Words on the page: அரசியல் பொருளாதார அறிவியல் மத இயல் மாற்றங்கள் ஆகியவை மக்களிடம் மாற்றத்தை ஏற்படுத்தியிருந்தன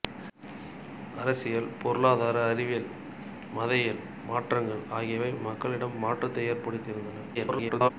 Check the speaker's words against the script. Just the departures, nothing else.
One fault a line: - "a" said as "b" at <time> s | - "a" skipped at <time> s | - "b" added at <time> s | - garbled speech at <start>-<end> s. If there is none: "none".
- garbled speech at 7.3-7.9 s